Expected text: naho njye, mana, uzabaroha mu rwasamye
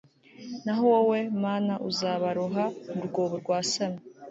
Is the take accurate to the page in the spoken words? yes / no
no